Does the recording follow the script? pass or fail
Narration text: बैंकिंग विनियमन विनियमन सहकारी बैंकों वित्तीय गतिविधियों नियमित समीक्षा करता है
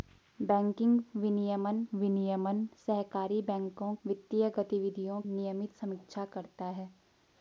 pass